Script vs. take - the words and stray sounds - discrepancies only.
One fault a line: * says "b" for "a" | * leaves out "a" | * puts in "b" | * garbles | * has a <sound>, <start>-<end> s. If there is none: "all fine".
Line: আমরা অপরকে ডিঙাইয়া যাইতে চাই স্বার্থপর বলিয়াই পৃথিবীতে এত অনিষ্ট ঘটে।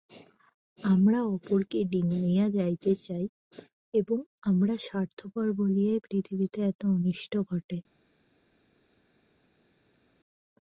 * puts in "এবং আমরা"